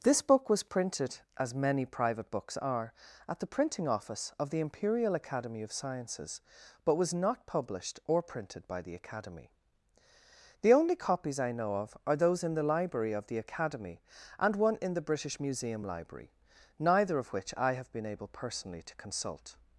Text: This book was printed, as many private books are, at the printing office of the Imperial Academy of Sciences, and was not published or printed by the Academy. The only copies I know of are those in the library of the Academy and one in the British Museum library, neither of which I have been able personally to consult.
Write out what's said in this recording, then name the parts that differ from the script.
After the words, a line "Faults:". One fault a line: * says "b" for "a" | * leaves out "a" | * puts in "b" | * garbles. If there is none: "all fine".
This book was printed, as many private books are, at the printing office of the Imperial Academy of Sciences, but was not published or printed by the Academy. The only copies I know of are those in the library of the Academy and one in the British Museum library, neither of which I have been able personally to consult.
Faults:
* says "but" for "and"